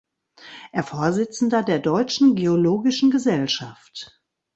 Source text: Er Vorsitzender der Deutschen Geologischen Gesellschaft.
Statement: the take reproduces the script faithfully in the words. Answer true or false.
true